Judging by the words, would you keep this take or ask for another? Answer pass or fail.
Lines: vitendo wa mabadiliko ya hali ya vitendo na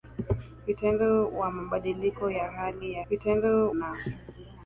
pass